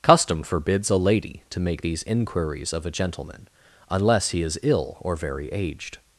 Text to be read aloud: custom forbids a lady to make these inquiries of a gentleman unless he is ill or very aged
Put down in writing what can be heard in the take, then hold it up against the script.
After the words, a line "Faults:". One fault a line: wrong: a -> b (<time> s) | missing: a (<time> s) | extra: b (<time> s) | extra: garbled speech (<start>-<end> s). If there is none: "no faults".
custom forbids a lady to make these inquiries of a gentleman unless he is ill or very aged
Faults:
no faults